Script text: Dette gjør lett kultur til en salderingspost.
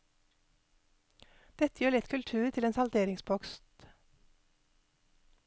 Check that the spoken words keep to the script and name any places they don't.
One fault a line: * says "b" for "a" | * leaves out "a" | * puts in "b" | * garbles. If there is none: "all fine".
all fine